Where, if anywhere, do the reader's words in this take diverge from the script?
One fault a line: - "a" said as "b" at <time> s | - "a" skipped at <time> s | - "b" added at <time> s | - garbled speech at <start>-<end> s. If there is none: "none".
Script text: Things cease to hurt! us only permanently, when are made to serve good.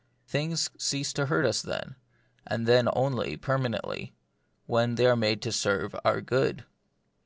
- "then and then" added at 1.6 s
- "they" added at 5.0 s
- "our" added at 6.1 s